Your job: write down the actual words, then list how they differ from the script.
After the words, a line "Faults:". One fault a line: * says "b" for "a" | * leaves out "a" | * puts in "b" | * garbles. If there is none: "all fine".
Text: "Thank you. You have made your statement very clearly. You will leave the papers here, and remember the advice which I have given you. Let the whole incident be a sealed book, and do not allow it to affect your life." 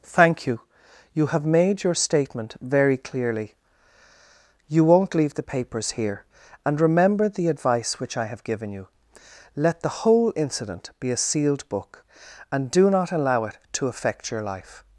"Thank you. You have made your statement very clearly. You won't leave the papers here, and remember the advice which I have given you. Let the whole incident be a sealed book, and do not allow it to affect your life."
Faults:
* says "won't" for "will"